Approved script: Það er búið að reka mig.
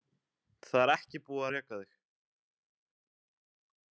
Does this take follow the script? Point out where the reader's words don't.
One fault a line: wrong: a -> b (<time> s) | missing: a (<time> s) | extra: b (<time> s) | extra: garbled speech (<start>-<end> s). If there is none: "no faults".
extra: ekki (0.9 s)
wrong: mig -> þig (1.8 s)